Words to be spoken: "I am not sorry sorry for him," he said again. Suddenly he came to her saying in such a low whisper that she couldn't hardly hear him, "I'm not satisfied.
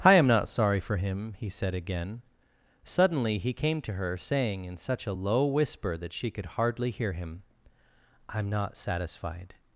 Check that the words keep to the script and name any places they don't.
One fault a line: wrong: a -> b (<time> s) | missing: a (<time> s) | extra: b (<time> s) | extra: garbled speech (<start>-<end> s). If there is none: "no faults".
missing: sorry (0.8 s)
wrong: couldn't -> could (6.3 s)